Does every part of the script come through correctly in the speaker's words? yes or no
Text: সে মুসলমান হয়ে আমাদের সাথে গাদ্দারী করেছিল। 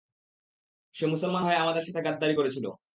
yes